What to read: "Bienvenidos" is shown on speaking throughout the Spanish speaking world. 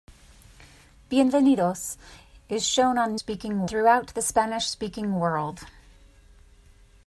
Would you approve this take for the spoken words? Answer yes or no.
yes